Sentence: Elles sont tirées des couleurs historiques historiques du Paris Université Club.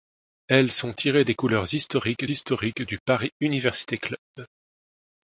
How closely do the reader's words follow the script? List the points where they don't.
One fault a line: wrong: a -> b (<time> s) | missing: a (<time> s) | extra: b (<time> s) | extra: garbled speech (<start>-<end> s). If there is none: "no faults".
no faults